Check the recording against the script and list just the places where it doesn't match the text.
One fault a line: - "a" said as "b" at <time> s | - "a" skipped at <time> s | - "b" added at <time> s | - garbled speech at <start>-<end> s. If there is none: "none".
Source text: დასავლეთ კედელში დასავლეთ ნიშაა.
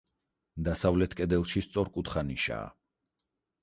- "დასავლეთ" said as "სწორკუთხა" at 1.7 s